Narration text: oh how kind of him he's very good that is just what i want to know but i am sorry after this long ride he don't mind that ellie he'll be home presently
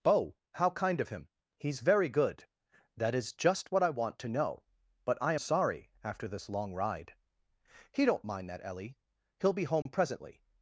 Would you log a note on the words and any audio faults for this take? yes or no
yes